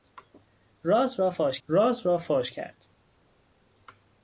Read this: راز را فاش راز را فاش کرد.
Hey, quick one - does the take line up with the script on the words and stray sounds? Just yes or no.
yes